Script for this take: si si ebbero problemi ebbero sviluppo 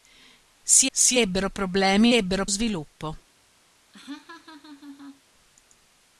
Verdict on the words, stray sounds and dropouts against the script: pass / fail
fail